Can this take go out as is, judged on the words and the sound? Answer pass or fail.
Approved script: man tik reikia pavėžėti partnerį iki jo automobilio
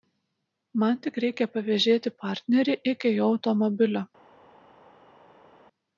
pass